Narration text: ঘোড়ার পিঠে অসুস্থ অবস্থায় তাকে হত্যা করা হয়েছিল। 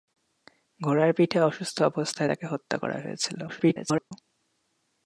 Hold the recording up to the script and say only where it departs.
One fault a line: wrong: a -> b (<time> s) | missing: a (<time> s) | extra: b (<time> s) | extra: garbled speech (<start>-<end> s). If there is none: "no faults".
extra: garbled speech (3.5-4.1 s)